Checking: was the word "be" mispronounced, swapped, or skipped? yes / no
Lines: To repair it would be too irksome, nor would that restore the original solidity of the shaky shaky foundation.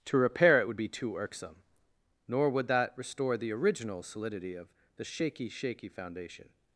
no